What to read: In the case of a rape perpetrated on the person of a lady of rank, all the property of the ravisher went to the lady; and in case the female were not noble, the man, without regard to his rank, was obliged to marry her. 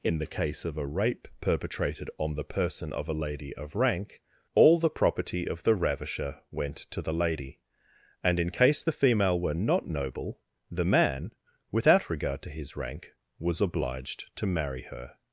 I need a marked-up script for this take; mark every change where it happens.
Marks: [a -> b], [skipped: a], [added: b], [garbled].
In the case of a rape perpetrated on the person of a lady of rank, all the property of the ravisher went to the lady; and in case the female were not noble, the man, without regard to his rank, was obliged to marry her.